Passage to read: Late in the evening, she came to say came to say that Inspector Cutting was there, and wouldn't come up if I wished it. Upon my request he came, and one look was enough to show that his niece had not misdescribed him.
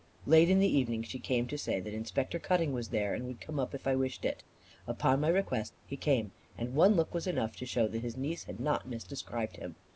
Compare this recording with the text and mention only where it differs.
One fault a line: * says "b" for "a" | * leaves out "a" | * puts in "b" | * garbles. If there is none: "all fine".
* leaves out "came to say"
* says "would" for "wouldn't"